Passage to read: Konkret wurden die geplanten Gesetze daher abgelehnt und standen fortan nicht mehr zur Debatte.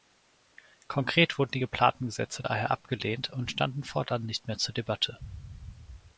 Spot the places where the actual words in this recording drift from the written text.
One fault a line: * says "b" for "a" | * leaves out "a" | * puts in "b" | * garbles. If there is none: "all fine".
all fine